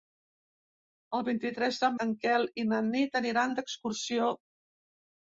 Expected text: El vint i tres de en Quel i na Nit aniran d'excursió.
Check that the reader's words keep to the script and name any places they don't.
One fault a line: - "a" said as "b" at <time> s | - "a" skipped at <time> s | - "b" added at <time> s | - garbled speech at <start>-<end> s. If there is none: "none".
none